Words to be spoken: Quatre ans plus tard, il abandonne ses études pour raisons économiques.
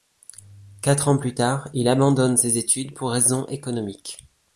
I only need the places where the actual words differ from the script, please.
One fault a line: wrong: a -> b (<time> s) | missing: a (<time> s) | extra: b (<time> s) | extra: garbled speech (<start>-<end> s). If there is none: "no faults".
no faults